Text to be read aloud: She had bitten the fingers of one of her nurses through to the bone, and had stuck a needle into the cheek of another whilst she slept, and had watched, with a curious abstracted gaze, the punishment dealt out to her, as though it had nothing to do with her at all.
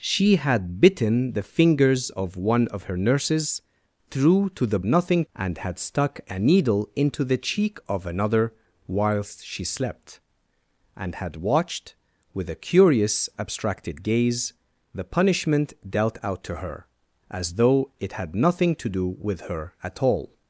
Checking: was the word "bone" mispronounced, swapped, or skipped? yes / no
yes